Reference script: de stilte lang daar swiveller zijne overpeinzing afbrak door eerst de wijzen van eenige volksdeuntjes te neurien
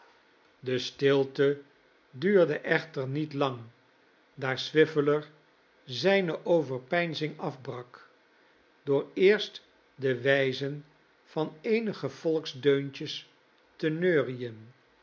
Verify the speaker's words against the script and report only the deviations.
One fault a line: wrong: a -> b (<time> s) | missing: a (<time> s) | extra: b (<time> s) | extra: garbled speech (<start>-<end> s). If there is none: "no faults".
extra: duurde echter niet (2.1 s)